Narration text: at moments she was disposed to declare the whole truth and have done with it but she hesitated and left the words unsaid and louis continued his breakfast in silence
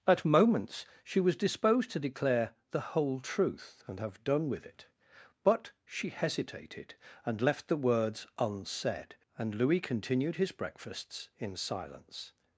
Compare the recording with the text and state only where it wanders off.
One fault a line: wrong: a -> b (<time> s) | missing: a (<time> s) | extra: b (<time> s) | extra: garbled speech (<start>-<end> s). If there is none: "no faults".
wrong: breakfast -> breakfasts (10.5 s)